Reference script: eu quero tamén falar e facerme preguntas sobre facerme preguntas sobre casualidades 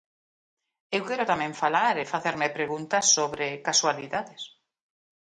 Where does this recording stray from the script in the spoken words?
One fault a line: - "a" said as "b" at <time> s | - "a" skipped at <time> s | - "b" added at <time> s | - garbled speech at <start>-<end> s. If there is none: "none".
- "facerme preguntas sobre" skipped at 3.5 s